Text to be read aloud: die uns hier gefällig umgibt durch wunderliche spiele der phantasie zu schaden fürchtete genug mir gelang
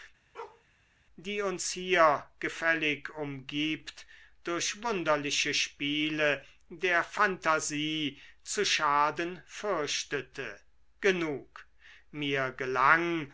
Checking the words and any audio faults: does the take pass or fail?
fail